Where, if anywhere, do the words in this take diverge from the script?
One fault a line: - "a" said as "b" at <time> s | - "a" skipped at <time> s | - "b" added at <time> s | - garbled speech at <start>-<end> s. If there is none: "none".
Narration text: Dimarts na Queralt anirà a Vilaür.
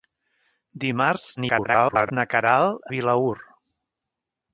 - garbled speech at 1.4-2.1 s
- "anirà a" skipped at 2.9 s